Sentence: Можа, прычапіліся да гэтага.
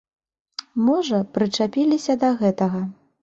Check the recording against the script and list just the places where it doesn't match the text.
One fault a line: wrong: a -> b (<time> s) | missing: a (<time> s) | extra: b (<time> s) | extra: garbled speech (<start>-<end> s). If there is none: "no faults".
no faults